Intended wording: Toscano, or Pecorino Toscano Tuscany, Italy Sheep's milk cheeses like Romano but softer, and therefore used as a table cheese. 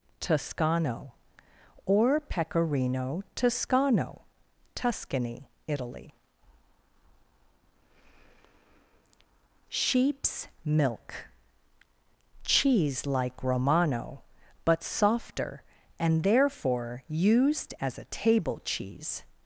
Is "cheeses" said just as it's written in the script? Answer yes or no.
no